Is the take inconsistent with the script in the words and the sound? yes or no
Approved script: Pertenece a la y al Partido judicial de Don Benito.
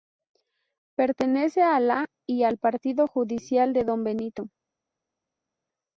no